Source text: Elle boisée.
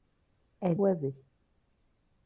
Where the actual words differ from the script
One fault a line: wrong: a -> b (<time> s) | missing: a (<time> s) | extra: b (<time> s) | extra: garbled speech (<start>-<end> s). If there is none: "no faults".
no faults